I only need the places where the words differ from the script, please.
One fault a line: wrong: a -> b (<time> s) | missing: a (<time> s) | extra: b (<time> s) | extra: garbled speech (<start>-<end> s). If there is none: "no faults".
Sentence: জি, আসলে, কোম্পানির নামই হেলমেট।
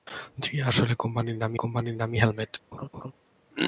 extra: কোম্পানির নামই (1.6 s)